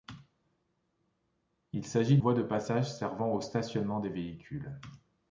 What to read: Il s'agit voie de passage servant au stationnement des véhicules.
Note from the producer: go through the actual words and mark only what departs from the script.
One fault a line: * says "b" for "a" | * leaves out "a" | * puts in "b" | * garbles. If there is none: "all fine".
all fine